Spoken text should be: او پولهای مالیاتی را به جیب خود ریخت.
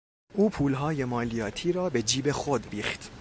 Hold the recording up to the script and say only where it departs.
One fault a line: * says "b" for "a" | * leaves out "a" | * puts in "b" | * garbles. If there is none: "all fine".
all fine